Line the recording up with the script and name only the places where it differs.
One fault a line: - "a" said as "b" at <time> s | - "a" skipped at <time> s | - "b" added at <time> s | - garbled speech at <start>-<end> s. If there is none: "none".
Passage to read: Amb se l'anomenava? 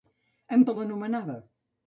none